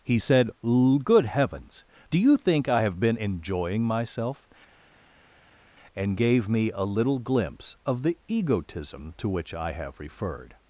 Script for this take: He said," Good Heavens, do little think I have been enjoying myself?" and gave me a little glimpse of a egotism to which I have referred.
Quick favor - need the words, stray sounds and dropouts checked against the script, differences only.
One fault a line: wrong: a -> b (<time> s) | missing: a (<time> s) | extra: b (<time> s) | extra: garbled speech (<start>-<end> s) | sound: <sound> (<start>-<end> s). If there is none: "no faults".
wrong: little -> you (2.2 s)
wrong: a -> the (8.0 s)